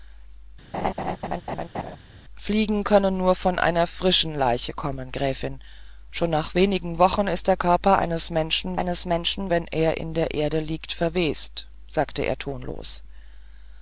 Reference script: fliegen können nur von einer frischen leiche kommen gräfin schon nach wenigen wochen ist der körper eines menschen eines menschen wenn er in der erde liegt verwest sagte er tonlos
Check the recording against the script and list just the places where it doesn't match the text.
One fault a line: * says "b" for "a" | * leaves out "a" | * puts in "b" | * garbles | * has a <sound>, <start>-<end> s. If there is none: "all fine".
* has a laugh, 0.7-2.0 s